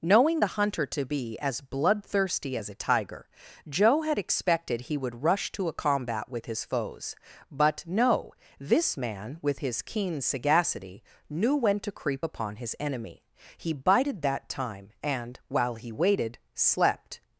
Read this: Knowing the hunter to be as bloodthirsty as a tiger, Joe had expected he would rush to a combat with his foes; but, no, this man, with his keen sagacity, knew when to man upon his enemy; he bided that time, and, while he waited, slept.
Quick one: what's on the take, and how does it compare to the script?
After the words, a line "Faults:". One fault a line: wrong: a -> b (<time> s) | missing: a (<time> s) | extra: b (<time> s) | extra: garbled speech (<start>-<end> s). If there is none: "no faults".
Knowing the hunter to be as bloodthirsty as a tiger, Joe had expected he would rush to a combat with his foes; but, no, this man, with his keen sagacity, knew when to creep upon his enemy; he bided that time, and, while he waited, slept.
Faults:
wrong: man -> creep (11.9 s)